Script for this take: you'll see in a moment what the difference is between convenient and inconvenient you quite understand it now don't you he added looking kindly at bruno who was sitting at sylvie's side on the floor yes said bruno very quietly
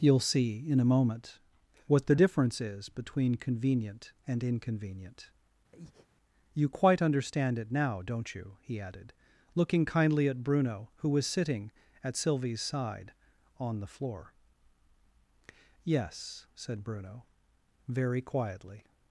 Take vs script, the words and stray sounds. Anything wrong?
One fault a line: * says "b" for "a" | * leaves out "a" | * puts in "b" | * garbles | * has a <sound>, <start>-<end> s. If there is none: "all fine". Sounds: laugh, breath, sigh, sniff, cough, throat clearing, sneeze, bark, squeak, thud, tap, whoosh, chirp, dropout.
* has a breath, 5.7-6.1 s